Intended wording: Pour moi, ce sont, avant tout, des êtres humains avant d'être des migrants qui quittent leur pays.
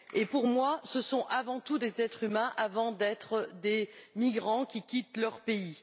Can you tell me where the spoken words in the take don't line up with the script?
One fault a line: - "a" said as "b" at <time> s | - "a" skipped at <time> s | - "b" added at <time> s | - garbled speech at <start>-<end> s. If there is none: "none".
none